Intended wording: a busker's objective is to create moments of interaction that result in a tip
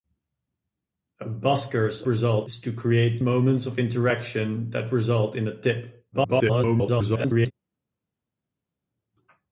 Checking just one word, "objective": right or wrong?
wrong